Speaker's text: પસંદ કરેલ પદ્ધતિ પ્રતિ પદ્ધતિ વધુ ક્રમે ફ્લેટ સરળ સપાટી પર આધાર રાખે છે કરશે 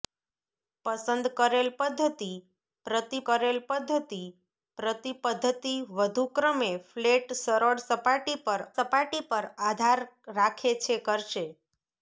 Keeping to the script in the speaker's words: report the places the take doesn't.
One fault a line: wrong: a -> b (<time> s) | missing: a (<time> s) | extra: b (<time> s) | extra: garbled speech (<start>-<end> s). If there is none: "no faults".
extra: કરેલ (3.3 s)
extra: પ્રતિ પદ્ધતિ (4.8 s)
extra: સપાટી પર (8.7 s)